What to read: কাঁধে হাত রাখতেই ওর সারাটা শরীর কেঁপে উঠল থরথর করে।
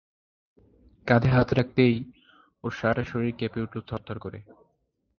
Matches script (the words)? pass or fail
pass